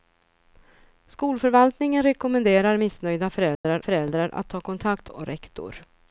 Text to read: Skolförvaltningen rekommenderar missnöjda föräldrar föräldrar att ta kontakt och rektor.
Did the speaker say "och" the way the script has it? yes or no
yes